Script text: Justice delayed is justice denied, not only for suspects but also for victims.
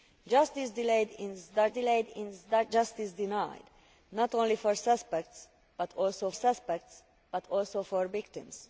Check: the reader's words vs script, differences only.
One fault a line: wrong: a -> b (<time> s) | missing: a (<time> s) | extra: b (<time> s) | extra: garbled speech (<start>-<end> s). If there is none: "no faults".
extra: delayed is (1.7 s)
extra: suspects but also (6.3 s)